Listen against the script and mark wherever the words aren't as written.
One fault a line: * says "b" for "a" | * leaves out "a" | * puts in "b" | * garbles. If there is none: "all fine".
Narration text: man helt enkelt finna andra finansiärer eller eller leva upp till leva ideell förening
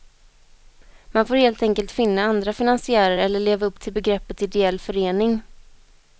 * puts in "får"
* leaves out "eller"
* says "begreppet" for "leva"